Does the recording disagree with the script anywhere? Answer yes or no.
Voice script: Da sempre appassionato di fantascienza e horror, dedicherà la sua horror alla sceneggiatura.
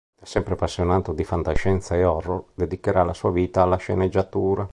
yes